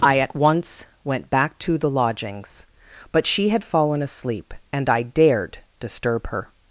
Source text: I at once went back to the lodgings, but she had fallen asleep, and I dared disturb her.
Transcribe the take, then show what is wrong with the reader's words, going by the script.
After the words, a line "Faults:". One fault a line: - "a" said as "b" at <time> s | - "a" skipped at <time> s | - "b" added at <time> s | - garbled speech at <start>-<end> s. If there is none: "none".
I at once went back to the lodgings, but she had fallen asleep, and I dared disturb her.
Faults:
none